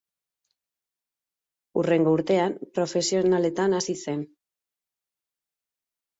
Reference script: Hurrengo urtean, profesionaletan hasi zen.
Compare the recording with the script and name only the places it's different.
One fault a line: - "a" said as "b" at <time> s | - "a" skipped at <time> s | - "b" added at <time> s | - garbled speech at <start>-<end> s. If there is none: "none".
none